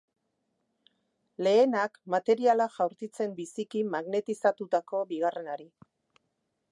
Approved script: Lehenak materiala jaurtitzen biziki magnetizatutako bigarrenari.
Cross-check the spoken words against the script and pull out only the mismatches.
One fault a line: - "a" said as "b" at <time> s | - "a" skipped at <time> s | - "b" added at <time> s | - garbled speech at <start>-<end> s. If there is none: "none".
none